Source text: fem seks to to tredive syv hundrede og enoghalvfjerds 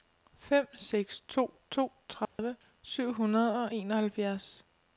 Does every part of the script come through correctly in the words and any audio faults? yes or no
no